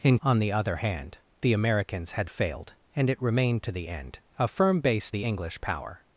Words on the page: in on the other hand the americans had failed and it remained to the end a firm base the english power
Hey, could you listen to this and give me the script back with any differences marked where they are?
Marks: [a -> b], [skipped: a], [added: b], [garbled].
in on the other hand the americans had failed and it remained to the end a firm base the english power